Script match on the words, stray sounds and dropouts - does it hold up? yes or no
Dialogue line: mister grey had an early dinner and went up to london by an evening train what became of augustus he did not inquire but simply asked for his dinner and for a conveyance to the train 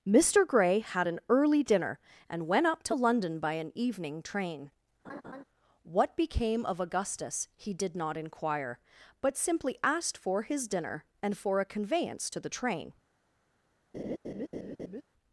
no